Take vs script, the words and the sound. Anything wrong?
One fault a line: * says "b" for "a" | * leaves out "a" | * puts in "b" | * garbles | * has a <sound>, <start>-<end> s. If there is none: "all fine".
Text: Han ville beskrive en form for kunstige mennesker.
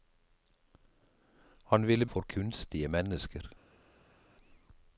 * leaves out "beskrive en form"